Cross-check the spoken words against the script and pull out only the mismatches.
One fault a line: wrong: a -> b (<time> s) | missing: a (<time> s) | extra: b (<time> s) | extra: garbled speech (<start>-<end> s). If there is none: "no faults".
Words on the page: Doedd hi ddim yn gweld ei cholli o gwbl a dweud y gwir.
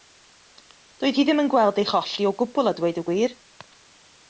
no faults